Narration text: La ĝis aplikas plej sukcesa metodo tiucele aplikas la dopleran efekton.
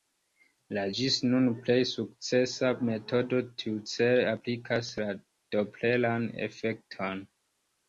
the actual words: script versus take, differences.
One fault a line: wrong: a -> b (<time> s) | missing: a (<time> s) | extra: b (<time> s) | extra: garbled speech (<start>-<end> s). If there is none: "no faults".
wrong: aplikas -> nun (1.3 s)